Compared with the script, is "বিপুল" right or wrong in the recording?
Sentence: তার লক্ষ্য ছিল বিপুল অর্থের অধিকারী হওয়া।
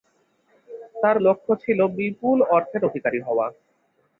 right